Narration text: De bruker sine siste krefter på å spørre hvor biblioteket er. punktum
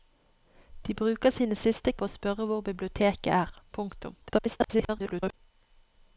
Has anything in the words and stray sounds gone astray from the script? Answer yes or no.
yes